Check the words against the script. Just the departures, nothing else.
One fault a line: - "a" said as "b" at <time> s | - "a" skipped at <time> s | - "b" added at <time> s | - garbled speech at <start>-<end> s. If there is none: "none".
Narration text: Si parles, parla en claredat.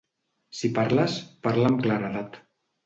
- "en" said as "amb" at 1.7 s